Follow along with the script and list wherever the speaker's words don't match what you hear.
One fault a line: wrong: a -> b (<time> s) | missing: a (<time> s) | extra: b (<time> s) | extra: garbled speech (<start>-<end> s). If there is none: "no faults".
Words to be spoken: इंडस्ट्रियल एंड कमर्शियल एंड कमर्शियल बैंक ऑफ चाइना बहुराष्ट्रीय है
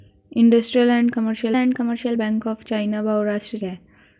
no faults